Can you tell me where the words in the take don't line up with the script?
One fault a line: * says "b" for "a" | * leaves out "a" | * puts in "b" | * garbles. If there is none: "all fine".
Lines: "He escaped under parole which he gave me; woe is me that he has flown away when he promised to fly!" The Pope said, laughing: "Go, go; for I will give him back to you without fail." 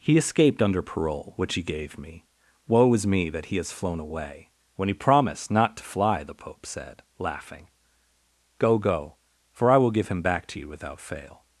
* puts in "not"